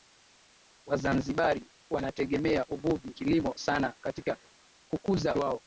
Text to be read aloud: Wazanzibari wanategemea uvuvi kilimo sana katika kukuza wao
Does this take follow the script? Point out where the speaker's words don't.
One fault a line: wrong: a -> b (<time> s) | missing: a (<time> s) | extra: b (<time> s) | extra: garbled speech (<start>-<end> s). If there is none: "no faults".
no faults